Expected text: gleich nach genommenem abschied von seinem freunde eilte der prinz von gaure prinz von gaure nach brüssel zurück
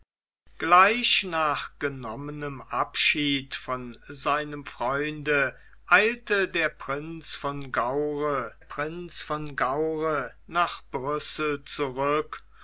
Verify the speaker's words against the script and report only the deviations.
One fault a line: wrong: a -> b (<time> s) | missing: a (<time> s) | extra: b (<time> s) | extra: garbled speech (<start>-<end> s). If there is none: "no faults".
no faults